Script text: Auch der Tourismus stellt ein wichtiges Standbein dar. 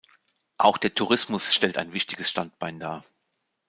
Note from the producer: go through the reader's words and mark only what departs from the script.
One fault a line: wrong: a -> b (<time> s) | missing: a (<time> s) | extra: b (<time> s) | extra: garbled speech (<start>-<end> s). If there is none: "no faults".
no faults